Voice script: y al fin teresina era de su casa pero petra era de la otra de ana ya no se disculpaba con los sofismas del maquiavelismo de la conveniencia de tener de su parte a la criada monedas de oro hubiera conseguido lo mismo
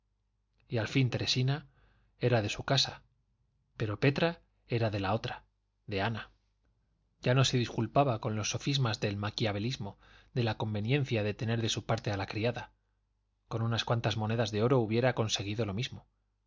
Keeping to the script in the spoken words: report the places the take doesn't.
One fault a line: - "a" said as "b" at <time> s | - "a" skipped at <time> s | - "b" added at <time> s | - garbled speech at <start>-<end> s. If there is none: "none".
- "con unas cuantas" added at 13.5 s